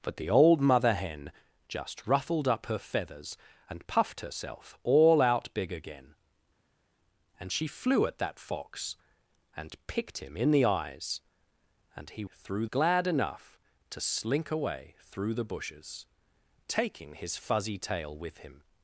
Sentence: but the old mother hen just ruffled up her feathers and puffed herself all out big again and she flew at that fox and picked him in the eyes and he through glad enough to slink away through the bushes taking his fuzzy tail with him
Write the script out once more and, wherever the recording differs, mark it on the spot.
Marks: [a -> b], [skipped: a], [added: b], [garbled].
but the old mother hen just ruffled up her feathers and puffed herself all out big again and she flew at that fox and picked him in the eyes and he through glad enough to slink away through the bushes taking his fuzzy tail with him